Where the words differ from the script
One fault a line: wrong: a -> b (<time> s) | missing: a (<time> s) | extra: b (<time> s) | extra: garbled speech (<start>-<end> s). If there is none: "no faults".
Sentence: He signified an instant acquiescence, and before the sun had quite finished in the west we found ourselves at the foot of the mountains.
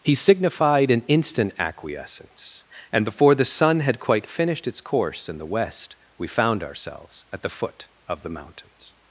extra: its course (4.7 s)